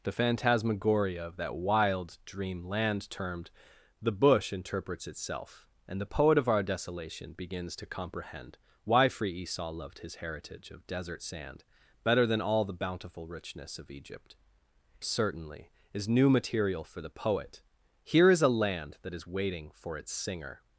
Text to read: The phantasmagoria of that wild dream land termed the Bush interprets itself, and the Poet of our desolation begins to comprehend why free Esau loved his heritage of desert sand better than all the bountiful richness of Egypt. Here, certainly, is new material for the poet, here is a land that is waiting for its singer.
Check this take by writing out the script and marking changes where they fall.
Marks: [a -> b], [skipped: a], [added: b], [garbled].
The phantasmagoria of that wild dream land termed the Bush interprets itself, and the Poet of our desolation begins to comprehend why free Esau loved his heritage of desert sand better than all the bountiful richness of Egypt. [skipped: Here,] certainly, is new material for the poet, here is a land that is waiting for its singer.